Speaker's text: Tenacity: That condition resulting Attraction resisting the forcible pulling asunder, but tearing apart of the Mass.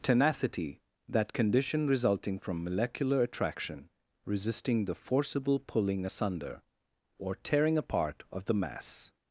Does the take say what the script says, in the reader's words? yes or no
no